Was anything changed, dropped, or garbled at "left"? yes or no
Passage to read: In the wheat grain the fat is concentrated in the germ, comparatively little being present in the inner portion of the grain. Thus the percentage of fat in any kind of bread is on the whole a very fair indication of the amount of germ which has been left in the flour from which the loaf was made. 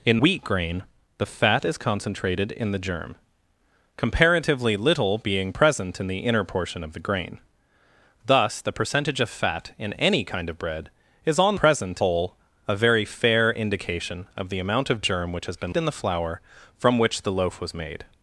yes